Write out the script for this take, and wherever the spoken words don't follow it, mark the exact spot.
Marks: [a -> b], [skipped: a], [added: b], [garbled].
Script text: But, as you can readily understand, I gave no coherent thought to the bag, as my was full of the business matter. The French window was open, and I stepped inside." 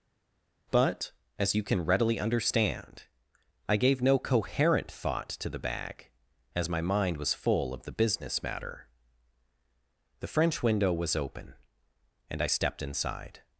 But, as you can readily understand, I gave no coherent thought to the bag, as my [added: mind] was full of the business matter. The French window was open, and I stepped inside."